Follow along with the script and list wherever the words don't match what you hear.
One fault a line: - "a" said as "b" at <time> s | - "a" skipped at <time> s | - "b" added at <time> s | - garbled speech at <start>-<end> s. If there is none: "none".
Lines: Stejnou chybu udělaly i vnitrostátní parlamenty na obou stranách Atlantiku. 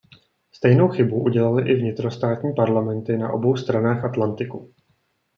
none